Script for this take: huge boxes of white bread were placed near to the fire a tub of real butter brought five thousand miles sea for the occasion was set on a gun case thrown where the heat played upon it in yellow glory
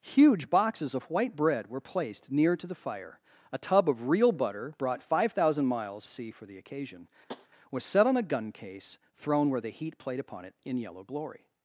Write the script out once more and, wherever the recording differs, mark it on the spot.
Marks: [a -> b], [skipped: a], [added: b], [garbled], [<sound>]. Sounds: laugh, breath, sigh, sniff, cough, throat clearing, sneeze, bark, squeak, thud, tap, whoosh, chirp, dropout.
huge boxes of white bread were placed near to the fire a tub of real butter brought five thousand miles sea for the occasion [tap] was set on a gun case thrown where the heat played upon it in yellow glory